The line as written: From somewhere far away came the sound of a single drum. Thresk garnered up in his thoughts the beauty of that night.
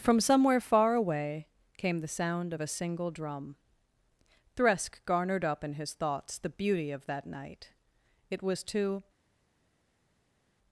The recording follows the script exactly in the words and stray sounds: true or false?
false